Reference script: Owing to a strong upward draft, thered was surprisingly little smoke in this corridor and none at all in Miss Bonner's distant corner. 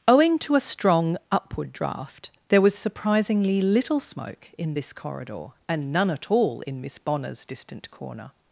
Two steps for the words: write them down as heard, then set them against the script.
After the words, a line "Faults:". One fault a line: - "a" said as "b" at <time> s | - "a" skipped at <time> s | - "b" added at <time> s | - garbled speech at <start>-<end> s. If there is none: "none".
Owing to a strong upward draft, there was surprisingly little smoke in this corridor and none at all in Miss Bonner's distant corner.
Faults:
- "thered" said as "there" at 2.5 s